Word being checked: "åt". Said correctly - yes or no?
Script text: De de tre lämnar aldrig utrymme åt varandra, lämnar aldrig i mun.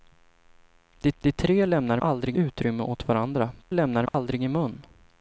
yes